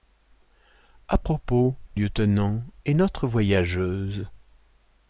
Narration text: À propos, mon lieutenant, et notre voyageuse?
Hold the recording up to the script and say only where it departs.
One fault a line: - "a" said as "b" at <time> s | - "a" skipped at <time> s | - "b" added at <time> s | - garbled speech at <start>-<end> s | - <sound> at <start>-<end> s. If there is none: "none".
- "mon" skipped at 1.8 s